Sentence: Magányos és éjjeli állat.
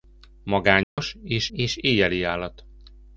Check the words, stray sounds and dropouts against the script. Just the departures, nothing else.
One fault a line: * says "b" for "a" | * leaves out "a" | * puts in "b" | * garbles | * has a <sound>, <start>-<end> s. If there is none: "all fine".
* has a dropout, 0.8-1.0 s
* puts in "és"